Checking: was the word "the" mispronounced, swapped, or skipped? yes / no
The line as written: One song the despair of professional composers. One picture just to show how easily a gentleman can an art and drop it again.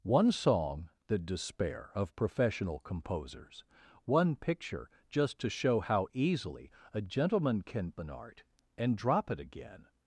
no